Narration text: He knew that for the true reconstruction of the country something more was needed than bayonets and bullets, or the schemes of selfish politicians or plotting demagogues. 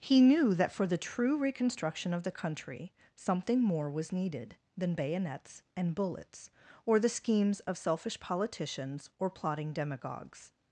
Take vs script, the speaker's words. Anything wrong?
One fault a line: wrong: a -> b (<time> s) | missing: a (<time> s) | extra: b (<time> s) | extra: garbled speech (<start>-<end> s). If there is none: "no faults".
no faults